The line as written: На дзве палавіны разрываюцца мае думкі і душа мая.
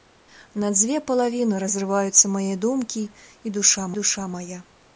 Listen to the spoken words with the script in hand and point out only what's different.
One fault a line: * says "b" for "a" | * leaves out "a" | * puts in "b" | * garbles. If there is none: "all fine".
* puts in "душа"